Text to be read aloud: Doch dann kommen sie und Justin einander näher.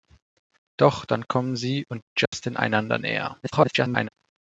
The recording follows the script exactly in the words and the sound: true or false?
false